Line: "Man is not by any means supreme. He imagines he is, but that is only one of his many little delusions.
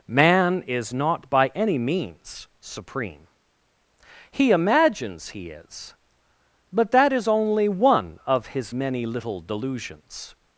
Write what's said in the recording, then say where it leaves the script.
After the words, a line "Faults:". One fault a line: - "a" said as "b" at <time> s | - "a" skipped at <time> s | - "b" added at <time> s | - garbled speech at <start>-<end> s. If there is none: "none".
"Man is not by any means supreme. He imagines he is, but that is only one of his many little delusions.
Faults:
none